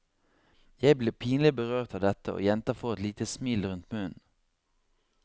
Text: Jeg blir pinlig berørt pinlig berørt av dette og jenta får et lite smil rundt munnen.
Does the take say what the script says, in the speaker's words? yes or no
no